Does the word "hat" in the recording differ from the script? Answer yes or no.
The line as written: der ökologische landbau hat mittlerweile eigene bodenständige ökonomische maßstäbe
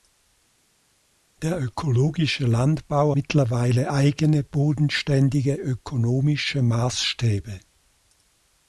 yes